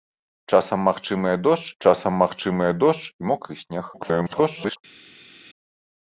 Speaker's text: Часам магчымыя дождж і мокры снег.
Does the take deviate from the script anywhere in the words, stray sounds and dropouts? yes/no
yes